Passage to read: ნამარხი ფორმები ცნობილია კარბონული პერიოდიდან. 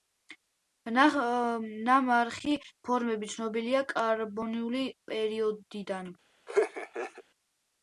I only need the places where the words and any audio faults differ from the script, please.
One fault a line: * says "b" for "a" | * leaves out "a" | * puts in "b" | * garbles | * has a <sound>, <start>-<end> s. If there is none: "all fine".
* has a laugh, 6.5-7.2 s